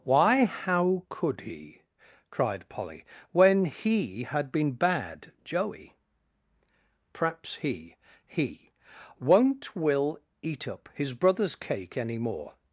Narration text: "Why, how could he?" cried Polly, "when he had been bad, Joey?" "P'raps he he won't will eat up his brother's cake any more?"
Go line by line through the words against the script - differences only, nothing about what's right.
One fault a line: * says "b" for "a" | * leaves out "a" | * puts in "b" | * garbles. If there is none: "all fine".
all fine